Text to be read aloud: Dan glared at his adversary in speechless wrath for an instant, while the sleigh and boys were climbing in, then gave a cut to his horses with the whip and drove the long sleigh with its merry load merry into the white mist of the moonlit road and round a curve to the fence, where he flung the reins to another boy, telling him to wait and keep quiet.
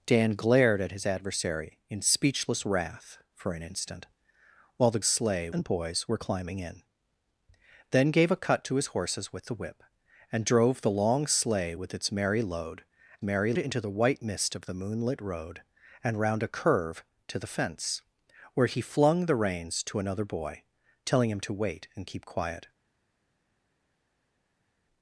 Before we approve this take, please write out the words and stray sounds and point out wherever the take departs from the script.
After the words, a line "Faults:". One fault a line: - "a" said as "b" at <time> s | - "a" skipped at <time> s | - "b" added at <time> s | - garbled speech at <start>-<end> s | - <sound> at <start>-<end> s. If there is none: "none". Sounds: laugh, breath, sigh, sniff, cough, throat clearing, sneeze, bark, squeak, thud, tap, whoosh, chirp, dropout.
Dan glared at his adversary in speechless wrath for an instant, while the sleigh and boys were climbing in, then gave a cut to his horses with the whip and drove the long sleigh with its merry load merry into the white mist of the moonlit road and round a curve to the fence, where he flung the reins to another boy, telling him to wait and keep quiet.
Faults:
none